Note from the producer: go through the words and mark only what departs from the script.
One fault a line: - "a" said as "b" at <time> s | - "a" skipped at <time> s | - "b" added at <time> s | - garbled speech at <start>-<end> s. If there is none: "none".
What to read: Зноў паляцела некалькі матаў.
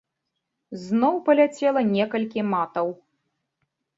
none